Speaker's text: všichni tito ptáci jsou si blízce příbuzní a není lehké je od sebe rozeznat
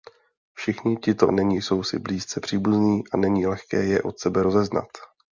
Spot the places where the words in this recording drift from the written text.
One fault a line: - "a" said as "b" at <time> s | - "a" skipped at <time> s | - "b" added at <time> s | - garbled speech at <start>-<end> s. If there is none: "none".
- "ptáci" said as "není" at 1.3 s